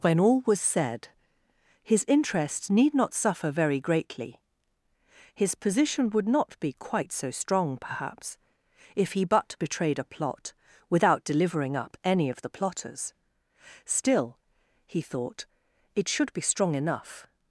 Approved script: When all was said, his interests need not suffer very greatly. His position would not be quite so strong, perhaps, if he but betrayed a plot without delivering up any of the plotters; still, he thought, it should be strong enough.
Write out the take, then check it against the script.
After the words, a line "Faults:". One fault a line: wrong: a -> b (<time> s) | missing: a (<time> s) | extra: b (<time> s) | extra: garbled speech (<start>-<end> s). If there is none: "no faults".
When all was said, his interests need not suffer very greatly. His position would not be quite so strong, perhaps, if he but betrayed a plot without delivering up any of the plotters; still, he thought, it should be strong enough.
Faults:
no faults